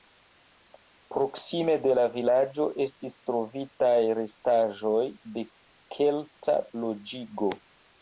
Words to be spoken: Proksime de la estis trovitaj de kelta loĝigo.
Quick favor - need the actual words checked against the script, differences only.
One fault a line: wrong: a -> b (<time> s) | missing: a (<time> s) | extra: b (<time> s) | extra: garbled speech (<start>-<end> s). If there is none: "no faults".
extra: vilaĝo (2.1 s)
extra: restaĵoj (4.2 s)